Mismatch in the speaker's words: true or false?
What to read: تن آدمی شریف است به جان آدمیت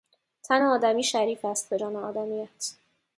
false